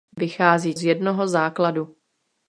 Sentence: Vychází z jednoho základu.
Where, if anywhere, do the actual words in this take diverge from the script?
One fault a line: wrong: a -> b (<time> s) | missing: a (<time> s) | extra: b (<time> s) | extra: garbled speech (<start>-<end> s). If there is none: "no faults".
no faults